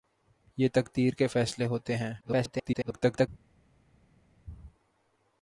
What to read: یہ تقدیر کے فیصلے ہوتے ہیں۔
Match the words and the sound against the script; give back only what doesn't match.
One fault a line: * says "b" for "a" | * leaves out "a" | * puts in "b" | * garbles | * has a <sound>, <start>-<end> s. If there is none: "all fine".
* garbles